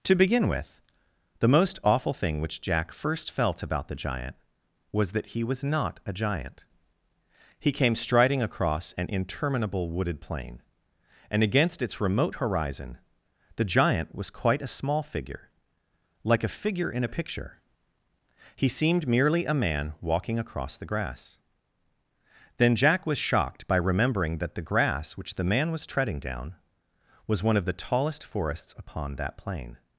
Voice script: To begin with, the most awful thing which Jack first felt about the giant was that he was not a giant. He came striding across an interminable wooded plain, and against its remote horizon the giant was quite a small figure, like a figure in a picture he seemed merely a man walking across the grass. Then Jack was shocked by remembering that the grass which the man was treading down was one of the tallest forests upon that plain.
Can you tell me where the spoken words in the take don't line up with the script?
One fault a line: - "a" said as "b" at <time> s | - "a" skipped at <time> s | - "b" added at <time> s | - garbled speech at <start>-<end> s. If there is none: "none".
none